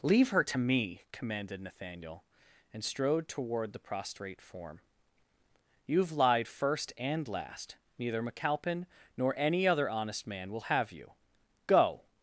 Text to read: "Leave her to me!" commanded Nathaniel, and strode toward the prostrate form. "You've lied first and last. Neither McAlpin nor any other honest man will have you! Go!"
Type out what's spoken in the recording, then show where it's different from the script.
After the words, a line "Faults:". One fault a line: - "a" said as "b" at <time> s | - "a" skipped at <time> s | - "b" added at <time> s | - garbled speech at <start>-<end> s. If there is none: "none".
"Leave her to me!" commanded Nathaniel, and strode toward the prostrate form. "You've lied first and last. Neither McAlpin nor any other honest man will have you! Go!"
Faults:
none